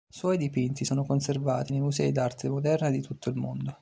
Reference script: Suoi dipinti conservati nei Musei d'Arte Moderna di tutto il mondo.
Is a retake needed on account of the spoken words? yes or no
yes